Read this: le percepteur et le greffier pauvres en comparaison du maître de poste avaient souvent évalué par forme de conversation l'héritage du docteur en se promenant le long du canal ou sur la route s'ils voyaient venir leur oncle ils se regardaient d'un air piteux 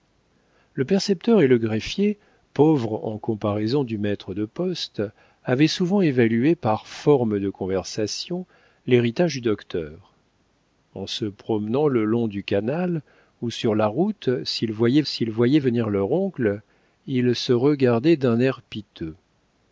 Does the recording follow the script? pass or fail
fail